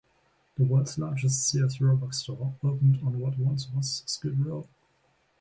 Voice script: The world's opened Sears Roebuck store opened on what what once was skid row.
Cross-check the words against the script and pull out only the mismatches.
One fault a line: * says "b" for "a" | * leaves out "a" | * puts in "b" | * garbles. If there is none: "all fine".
* says "largest" for "opened"
* leaves out "what"